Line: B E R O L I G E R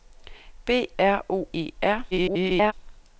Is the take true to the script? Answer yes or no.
no